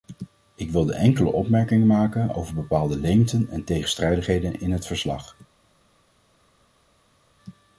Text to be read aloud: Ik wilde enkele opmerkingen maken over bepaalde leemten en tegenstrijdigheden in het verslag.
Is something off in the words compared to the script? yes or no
no